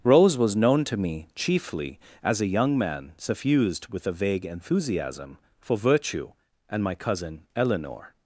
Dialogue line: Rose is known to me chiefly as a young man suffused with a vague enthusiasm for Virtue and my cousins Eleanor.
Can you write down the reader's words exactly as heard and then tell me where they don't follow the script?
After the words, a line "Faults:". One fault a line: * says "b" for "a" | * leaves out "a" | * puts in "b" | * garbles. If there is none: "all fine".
Rose was known to me chiefly as a young man suffused with a vague enthusiasm for Virtue and my cousin Eleanor.
Faults:
* says "was" for "is"
* says "cousin" for "cousins"